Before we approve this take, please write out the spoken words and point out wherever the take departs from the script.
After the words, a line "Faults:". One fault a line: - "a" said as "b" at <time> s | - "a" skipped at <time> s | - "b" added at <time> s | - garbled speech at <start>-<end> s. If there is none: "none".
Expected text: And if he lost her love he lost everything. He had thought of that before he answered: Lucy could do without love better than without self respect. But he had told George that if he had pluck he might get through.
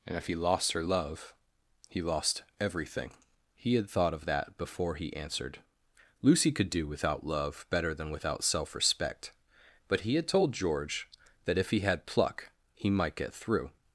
And if he lost her love he lost everything. He had thought of that before he answered: Lucy could do without love better than without self respect. But he had told George that if he had pluck he might get through.
Faults:
none